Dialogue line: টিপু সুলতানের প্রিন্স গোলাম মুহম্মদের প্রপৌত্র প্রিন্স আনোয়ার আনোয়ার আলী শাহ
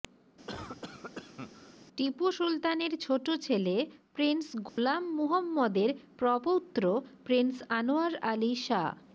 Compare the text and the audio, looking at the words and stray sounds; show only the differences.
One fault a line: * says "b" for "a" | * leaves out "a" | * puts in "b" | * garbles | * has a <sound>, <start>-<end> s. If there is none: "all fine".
* has a cough, 0.5-1.8 s
* puts in "ছোট ছেলে"
* has a dropout, 4.7-4.8 s
* leaves out "আনোয়ার"